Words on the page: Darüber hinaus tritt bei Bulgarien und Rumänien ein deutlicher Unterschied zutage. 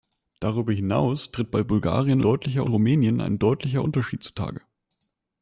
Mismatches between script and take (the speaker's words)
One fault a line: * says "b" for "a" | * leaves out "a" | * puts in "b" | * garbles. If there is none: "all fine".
* says "deutlicher" for "und"